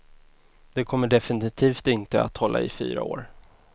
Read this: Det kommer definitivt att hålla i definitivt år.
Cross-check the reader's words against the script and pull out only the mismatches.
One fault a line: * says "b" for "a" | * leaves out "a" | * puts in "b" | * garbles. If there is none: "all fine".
* puts in "inte"
* says "fyra" for "definitivt"